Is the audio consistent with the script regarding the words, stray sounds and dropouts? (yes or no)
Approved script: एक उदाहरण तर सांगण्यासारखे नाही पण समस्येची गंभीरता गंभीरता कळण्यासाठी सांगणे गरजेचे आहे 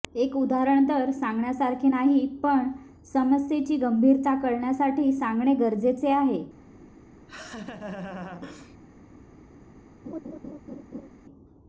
no